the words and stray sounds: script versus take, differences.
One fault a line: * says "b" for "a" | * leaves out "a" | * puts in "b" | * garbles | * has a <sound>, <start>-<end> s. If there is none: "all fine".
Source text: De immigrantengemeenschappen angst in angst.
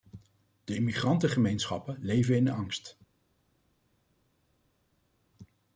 * says "leven" for "angst"